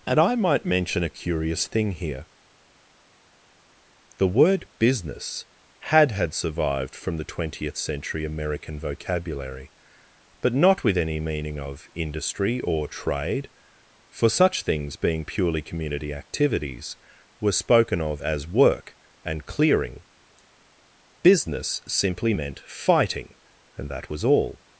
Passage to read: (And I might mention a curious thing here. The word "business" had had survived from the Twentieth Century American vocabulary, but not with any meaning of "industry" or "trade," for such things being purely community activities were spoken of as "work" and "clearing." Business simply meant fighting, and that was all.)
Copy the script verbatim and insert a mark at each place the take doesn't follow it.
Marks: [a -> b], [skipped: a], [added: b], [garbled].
(And I might mention a curious thing here. The word "business" had had survived from the Twentieth Century American vocabulary, but not with any meaning of "industry" or "trade," for such things being purely community activities were spoken of as "work" and "clearing." Business simply meant fighting, and that was all.)